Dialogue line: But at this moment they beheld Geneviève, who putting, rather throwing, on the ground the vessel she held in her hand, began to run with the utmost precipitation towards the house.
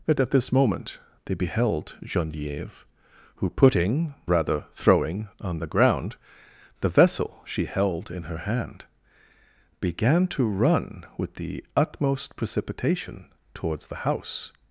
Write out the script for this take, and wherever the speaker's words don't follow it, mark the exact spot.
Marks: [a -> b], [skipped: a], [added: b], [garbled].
But at this moment they beheld Geneviève, who putting, rather throwing, on the ground the vessel she held in her hand, began to run with the utmost precipitation towards the house.